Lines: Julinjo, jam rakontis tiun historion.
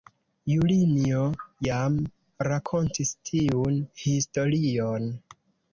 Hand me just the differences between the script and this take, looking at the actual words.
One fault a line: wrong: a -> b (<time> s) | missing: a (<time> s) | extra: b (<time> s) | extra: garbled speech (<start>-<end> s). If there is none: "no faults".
no faults